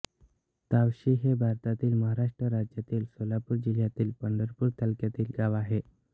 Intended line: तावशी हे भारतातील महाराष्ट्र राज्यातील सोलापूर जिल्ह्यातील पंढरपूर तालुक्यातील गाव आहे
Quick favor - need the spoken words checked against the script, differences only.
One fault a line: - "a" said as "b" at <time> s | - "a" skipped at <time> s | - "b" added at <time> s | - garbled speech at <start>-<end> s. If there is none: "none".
none